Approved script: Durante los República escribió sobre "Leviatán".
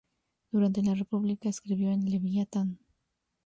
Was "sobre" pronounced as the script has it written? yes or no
no